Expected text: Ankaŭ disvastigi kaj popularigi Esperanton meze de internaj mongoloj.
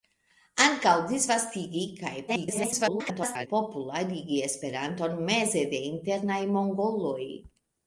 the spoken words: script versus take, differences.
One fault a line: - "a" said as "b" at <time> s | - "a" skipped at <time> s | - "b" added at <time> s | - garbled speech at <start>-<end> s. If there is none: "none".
- garbled speech at 2.3-3.5 s